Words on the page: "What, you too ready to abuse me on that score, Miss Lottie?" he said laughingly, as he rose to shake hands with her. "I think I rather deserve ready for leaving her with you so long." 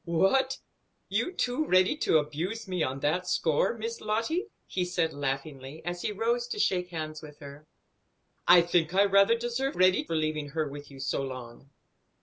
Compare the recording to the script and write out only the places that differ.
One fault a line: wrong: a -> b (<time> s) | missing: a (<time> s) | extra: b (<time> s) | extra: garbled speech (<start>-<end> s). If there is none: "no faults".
no faults